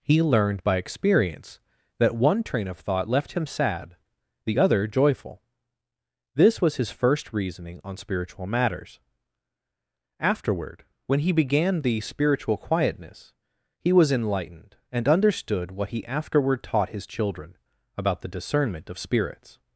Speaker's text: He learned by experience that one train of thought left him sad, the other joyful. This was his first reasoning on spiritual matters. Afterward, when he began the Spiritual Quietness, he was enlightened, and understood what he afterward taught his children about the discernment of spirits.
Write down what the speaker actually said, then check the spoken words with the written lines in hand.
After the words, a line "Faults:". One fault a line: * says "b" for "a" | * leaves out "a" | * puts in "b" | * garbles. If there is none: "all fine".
He learned by experience that one train of thought left him sad, the other joyful. This was his first reasoning on spiritual matters. Afterward, when he began the Spiritual Quietness, he was enlightened, and understood what he afterward taught his children about the discernment of spirits.
Faults:
all fine